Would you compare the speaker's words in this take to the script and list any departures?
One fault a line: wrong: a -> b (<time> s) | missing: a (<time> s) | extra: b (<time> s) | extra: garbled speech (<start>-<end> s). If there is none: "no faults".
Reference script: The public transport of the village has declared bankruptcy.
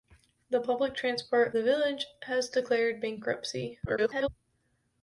missing: of (1.5 s)
extra: garbled speech (3.8-4.3 s)